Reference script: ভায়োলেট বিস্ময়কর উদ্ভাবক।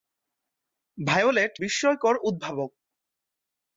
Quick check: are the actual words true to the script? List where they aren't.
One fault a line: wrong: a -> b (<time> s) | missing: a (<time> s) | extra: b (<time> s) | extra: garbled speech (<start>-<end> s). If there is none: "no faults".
no faults